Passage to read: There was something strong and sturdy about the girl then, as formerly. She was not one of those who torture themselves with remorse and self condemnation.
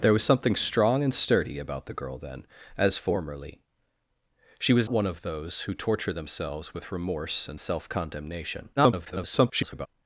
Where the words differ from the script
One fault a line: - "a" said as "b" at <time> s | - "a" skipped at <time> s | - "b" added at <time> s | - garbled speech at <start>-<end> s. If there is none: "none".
- "not" skipped at 4.9 s
- garbled speech at 8.8-9.9 s